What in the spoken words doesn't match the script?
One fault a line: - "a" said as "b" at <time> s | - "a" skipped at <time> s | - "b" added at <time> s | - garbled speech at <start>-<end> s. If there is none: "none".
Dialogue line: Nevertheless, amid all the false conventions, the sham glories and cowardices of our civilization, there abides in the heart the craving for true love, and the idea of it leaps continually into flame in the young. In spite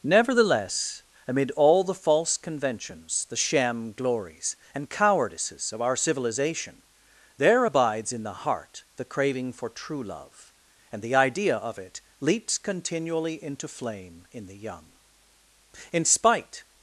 none